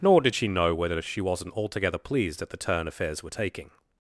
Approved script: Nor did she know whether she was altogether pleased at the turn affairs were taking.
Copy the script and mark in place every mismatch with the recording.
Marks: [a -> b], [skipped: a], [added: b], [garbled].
Nor did she know whether she [was -> wasn't] altogether pleased at the turn affairs were taking.